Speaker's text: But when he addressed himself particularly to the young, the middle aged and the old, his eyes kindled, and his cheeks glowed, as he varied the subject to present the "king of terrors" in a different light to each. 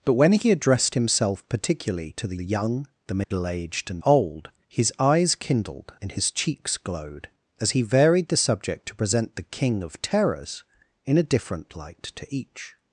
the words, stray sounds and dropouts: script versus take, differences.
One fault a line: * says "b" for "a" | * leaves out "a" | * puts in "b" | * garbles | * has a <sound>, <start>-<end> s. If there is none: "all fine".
* puts in "the"
* has a dropout, 3.2-3.3 s
* leaves out "the"